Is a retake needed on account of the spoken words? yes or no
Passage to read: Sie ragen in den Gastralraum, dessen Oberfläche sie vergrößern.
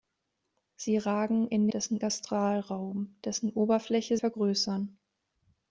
yes